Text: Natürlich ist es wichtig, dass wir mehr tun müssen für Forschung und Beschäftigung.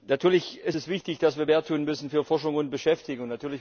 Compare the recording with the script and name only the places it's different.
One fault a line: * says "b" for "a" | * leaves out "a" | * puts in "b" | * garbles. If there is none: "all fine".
all fine